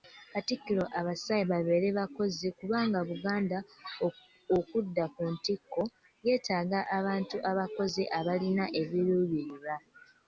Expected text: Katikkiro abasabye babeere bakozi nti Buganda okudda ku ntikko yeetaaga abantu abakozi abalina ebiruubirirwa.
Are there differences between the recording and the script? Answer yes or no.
yes